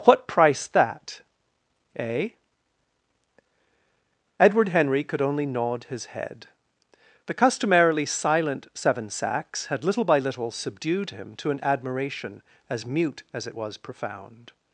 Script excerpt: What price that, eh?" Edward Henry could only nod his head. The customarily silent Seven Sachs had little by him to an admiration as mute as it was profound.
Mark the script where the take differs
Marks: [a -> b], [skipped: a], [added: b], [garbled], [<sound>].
What price that, eh?" Edward Henry could only nod his head. The customarily silent Seven Sachs had little by [added: little subdued] him to an admiration as mute as it was profound.